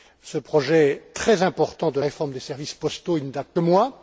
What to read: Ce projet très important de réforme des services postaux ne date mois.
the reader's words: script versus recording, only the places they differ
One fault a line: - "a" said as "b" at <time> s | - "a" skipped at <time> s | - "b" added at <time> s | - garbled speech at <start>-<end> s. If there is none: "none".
none